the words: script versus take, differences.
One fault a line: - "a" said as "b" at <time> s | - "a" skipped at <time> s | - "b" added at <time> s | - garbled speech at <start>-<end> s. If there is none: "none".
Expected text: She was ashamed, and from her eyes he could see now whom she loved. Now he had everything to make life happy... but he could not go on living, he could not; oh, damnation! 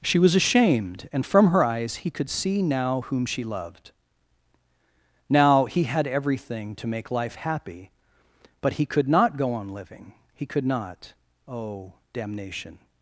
none